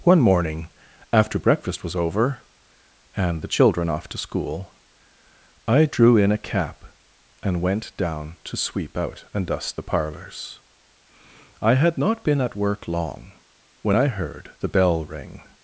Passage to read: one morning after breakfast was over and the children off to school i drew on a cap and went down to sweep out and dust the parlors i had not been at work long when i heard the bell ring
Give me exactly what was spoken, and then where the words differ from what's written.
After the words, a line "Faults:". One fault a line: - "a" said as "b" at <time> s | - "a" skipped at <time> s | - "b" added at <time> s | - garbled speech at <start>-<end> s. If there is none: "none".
one morning after breakfast was over and the children off to school i drew in a cap and went down to sweep out and dust the parlors i had not been at work long when i heard the bell ring
Faults:
- "on" said as "in" at 6.2 s